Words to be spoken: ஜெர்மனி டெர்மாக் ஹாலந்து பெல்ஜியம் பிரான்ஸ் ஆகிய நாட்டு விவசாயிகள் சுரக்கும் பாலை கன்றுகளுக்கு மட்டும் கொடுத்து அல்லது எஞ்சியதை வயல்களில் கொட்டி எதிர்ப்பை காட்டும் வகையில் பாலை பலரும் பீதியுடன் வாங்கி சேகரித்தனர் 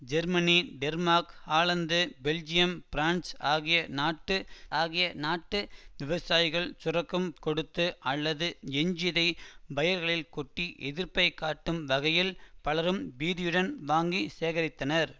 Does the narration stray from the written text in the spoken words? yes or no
yes